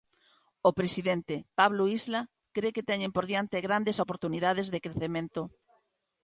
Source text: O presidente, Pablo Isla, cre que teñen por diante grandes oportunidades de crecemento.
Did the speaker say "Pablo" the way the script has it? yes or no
yes